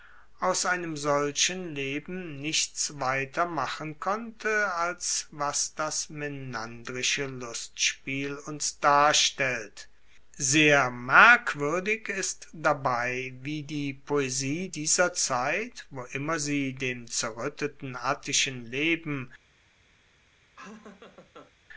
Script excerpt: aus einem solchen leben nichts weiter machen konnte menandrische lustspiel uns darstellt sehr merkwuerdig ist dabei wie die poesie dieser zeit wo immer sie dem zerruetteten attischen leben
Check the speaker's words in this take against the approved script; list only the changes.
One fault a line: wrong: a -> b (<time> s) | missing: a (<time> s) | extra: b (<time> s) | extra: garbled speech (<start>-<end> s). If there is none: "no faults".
extra: als was das (4.7 s)